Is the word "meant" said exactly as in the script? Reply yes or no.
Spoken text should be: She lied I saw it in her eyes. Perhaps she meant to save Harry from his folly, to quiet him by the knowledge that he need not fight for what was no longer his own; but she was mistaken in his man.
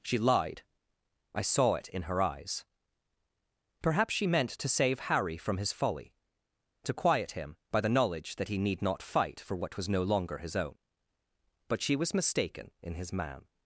yes